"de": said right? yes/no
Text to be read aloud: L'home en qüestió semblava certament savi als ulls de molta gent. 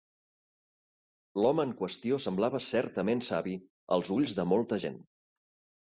yes